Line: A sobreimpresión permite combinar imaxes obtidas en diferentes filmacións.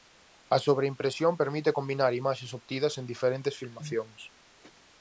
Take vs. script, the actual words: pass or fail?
pass